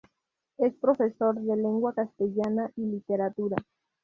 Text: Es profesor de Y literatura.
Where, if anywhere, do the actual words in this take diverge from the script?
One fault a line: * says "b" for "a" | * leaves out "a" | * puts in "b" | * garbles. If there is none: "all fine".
* puts in "Lengua castellana"